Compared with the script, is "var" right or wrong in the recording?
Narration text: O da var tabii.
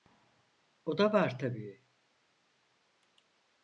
right